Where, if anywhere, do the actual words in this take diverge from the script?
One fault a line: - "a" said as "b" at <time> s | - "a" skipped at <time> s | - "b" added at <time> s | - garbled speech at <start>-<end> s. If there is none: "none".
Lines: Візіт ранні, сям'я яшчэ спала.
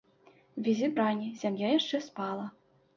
none